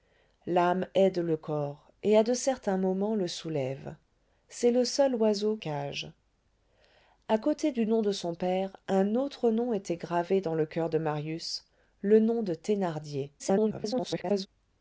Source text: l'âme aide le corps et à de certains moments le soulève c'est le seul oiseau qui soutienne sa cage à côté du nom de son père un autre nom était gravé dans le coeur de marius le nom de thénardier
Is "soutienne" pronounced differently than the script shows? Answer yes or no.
yes